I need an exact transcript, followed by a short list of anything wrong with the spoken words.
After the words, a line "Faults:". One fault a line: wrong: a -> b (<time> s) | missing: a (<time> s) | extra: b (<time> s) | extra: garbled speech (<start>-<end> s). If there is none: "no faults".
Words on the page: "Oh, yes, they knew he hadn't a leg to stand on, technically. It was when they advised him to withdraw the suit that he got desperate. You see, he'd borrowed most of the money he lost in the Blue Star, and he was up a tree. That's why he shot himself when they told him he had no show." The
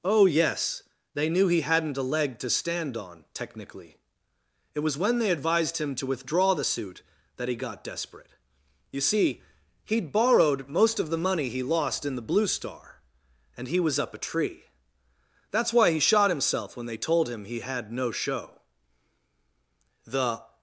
"Oh, yes, they knew he hadn't a leg to stand on, technically. It was when they advised him to withdraw the suit that he got desperate. You see, he'd borrowed most of the money he lost in the Blue Star, and he was up a tree. That's why he shot himself when they told him he had no show." The
Faults:
no faults